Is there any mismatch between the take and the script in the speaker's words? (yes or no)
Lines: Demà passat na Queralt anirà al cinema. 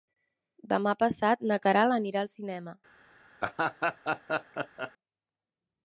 no